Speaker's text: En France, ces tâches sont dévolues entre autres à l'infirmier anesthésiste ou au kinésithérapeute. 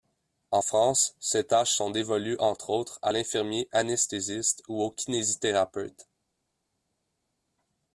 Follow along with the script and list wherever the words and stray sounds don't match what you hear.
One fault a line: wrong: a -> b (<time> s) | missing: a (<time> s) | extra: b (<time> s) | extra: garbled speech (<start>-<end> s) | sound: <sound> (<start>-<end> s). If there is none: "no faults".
no faults